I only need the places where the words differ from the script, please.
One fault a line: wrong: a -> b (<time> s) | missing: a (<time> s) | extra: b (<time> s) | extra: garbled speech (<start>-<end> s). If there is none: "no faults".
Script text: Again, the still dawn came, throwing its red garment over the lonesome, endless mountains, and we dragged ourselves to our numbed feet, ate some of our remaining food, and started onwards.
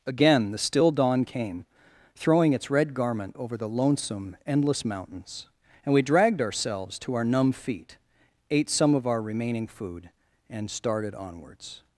wrong: numbed -> numb (7.2 s)